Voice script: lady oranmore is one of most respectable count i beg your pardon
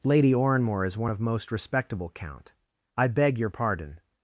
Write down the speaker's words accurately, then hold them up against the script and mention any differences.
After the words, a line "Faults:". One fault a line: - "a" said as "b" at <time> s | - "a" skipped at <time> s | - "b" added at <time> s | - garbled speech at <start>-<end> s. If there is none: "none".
lady oranmore is one of most respectable count i beg your pardon
Faults:
none